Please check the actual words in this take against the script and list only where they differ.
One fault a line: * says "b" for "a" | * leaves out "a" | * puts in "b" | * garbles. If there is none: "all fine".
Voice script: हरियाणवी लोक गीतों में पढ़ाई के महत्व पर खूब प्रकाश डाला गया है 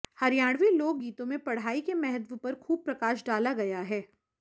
all fine